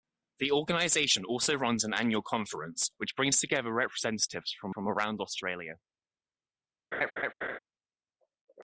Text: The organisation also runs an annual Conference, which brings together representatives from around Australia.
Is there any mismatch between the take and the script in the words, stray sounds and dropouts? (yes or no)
yes